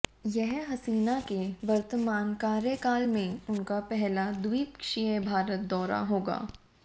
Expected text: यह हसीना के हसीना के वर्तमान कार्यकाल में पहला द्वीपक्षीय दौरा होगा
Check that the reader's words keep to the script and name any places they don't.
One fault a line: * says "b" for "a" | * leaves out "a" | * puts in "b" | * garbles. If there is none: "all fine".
* leaves out "हसीना के"
* puts in "उनका"
* puts in "भारत"